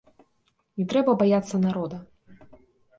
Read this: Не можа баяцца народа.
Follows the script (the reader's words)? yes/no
no